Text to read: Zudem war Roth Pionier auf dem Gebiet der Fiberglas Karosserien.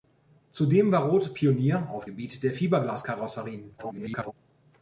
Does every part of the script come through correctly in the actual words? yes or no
no